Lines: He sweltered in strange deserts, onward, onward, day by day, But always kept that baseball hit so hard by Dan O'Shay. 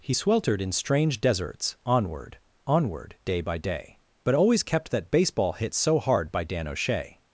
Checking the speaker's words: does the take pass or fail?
pass